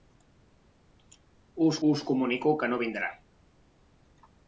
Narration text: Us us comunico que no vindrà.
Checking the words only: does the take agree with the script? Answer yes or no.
yes